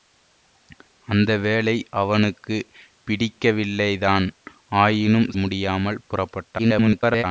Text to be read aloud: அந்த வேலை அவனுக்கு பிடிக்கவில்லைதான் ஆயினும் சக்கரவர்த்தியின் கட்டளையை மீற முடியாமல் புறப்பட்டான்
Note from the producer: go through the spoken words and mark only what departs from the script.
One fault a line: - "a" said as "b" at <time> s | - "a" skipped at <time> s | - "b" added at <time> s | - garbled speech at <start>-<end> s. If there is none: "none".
- "சக்கரவர்த்தியின் கட்டளையை மீற" skipped at 5.3 s
- garbled speech at 6.6-7.2 s